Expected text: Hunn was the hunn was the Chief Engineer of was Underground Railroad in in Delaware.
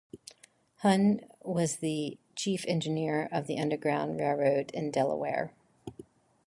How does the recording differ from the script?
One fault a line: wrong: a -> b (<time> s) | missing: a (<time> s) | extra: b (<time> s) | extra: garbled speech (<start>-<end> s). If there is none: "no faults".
missing: hunn was the (2.2 s)
wrong: was -> the (3.5 s)
missing: in (4.9 s)